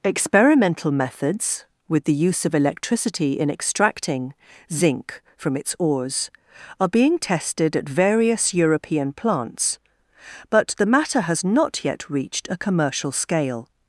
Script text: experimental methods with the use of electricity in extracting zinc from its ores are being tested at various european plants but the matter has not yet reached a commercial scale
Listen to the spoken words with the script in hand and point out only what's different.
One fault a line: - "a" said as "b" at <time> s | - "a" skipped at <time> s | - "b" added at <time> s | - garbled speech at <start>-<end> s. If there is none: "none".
none